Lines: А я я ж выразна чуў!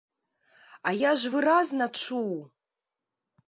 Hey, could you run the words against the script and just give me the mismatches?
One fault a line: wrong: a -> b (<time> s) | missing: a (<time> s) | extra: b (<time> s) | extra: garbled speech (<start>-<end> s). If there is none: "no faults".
missing: я (1.1 s)